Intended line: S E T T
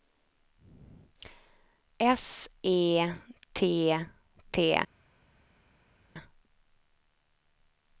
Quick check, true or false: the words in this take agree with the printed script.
true